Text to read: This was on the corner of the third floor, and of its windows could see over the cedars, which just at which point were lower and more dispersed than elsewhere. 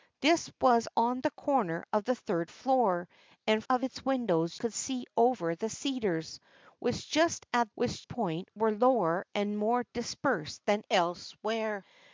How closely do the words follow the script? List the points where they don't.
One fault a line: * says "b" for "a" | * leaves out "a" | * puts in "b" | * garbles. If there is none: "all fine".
all fine